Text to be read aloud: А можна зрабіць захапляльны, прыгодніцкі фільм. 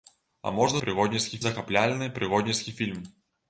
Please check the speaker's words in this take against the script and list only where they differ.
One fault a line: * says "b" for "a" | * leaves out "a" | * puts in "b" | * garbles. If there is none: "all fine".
* says "прыгодніцкі" for "зрабіць"